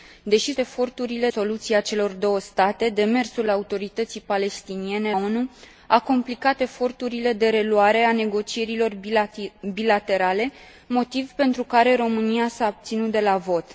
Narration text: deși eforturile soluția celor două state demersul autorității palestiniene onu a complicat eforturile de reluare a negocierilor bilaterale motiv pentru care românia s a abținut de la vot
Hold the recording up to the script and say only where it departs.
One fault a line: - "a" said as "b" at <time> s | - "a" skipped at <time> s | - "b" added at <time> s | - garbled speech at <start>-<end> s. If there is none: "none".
none